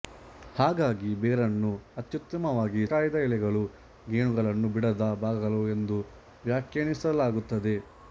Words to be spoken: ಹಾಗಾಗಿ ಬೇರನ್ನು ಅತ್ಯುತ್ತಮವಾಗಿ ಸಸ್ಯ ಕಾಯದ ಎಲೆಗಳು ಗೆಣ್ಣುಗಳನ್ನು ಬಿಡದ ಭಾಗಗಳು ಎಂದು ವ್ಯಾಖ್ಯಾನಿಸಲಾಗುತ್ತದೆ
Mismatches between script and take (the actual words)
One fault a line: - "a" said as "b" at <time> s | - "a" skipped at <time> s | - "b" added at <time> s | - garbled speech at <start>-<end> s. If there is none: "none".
- "ಸಸ್ಯ" skipped at 2.8 s